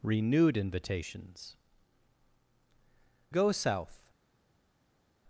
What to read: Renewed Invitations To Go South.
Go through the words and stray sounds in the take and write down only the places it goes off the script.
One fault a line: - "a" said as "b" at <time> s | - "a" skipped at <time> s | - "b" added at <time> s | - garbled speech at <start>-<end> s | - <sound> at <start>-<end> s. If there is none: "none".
- "To" skipped at 1.6 s